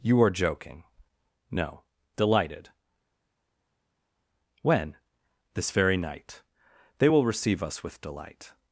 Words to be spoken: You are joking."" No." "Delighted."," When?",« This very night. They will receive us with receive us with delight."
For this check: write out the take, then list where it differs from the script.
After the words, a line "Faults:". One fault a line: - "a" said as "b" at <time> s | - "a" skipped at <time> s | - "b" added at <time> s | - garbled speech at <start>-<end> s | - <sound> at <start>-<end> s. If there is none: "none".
You are joking."" No." "Delighted."," When?",« This very night. They will receive us with delight."
Faults:
- "receive us with" skipped at 8.0 s